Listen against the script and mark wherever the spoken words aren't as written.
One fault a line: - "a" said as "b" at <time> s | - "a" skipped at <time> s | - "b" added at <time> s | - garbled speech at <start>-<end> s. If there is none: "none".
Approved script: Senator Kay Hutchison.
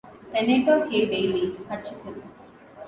- "Bailey" added at 1.1 s